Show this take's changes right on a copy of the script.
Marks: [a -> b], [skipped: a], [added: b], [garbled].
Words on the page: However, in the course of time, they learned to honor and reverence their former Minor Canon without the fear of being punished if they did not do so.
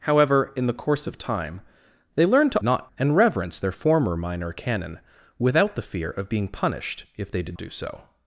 However, in the course of time, they learned to [honor -> not] and reverence their former Minor Canon without the fear of being punished if they did [skipped: not] do so.